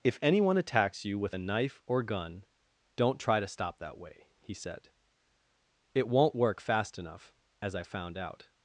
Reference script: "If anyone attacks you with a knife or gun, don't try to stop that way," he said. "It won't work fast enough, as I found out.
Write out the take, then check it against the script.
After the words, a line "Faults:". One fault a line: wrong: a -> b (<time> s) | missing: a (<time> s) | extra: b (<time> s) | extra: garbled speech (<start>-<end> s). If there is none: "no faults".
"If anyone attacks you with a knife or gun, don't try to stop that way," he said. "It won't work fast enough, as I found out.
Faults:
no faults